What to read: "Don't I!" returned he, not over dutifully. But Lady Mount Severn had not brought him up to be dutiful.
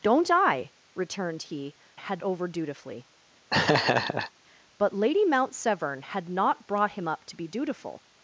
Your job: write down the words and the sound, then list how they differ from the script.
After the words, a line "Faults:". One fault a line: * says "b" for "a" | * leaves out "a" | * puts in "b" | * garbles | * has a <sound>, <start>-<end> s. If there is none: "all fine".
"Don't I!" returned he, had over dutifully. But Lady Mount Severn had not brought him up to be dutiful.
Faults:
* says "had" for "not"
* has a laugh, 3.5-4.3 s